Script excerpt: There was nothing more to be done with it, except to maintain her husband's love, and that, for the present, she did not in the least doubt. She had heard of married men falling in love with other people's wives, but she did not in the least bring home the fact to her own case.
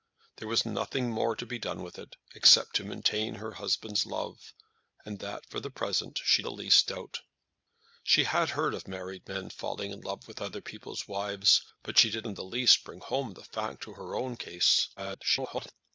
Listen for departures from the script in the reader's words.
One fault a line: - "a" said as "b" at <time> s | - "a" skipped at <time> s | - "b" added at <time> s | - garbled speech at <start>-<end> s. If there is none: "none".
- "did not in" skipped at 6.4 s
- "not" skipped at 12.3 s
- garbled speech at 15.0-15.7 s